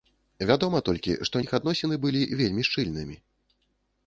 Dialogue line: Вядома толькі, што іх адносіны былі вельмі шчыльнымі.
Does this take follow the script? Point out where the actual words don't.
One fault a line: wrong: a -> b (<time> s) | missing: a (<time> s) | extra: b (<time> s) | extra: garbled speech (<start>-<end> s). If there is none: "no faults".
no faults